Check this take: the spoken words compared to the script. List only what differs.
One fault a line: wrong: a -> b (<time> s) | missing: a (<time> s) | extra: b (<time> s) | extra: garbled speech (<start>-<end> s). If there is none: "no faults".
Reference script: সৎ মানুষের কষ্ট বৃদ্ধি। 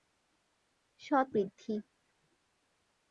missing: মানুষের কষ্ট (1.3 s)